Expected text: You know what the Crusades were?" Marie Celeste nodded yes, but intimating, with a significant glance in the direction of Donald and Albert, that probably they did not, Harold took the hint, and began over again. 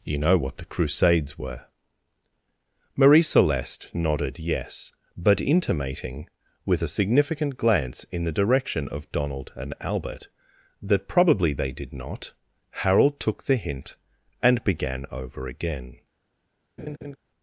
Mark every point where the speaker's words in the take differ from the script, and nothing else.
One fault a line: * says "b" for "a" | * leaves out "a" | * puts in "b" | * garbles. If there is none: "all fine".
all fine